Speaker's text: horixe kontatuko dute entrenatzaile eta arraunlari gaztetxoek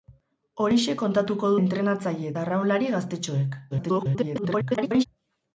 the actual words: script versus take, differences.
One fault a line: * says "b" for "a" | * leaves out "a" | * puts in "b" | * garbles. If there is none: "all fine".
* leaves out "dute"
* garbles